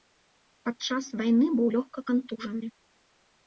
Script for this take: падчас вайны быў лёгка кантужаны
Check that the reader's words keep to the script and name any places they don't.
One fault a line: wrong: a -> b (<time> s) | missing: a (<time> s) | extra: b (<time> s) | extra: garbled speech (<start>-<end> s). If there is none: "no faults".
no faults